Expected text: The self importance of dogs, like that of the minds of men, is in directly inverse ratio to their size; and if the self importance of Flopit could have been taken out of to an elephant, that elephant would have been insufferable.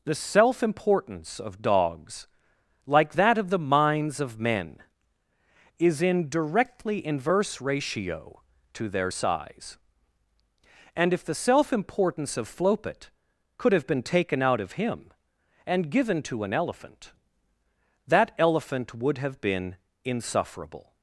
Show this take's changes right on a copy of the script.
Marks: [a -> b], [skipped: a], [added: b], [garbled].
The self importance of dogs, like that of the minds of men, is in directly inverse ratio to their size; and if the self importance of Flopit could have been taken out of [added: him and given] to an elephant, that elephant would have been insufferable.